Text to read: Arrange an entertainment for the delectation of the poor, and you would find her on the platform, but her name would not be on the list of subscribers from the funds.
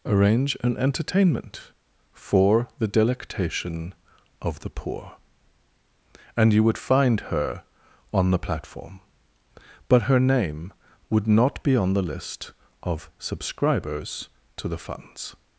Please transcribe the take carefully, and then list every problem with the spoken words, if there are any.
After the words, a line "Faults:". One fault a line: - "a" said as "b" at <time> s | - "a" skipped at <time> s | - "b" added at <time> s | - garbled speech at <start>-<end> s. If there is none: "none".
Arrange an entertainment for the delectation of the poor, and you would find her on the platform, but her name would not be on the list of subscribers to the funds.
Faults:
- "from" said as "to" at 14.6 s